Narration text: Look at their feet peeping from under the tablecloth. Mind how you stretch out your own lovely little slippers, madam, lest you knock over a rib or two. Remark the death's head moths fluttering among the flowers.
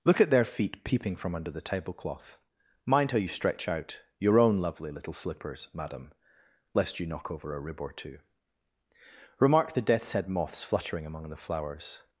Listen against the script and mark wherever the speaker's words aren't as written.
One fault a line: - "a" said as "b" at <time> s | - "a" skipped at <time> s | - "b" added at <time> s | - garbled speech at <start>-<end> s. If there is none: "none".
none